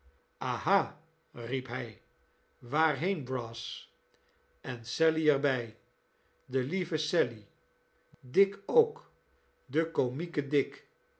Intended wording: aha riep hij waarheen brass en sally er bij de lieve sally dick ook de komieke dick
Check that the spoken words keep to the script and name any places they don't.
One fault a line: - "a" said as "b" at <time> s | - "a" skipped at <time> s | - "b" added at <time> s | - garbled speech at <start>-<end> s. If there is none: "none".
none